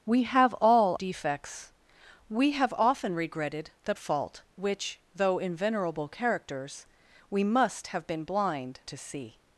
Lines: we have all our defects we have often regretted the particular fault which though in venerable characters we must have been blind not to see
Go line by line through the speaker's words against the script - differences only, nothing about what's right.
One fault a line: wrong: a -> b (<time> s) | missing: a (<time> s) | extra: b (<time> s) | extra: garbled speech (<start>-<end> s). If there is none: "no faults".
missing: our (0.9 s)
missing: particular (3.9 s)
missing: not (8.8 s)